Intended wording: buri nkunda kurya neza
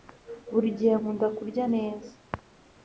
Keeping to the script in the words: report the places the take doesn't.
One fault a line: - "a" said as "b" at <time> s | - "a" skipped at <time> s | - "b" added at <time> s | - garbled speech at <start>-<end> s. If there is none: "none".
- "gihe" added at 0.8 s